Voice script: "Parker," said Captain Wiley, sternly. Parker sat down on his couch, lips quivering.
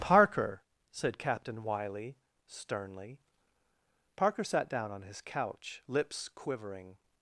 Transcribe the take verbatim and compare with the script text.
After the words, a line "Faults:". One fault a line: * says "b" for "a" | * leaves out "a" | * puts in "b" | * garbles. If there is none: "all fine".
"Parker," said Captain Wiley, sternly. Parker sat down on his couch, lips quivering.
Faults:
all fine